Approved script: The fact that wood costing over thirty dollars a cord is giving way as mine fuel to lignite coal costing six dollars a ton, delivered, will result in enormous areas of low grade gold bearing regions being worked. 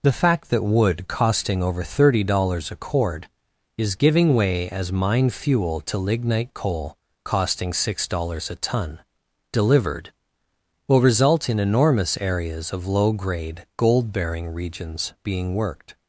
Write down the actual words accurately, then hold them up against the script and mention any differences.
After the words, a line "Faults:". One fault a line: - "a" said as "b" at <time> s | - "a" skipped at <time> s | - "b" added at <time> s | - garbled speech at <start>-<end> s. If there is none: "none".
The fact that wood costing over thirty dollars a cord is giving way as mine fuel to lignite coal costing six dollars a ton, delivered, will result in enormous areas of low grade gold bearing regions being worked.
Faults:
none